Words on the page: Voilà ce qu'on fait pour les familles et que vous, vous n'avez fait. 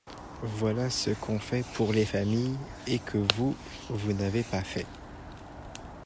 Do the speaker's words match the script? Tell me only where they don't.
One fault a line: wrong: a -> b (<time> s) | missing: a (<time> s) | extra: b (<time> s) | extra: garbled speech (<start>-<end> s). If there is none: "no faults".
extra: pas (4.4 s)